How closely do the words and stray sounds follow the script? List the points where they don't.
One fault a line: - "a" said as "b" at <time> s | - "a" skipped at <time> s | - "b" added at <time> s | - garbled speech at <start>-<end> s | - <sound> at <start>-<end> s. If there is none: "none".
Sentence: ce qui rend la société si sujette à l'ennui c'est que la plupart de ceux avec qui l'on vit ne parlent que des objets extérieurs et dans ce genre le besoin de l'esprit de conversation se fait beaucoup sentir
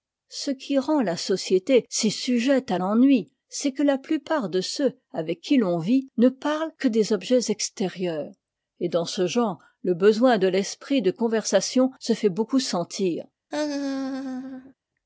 - laugh at 13.5-14.7 s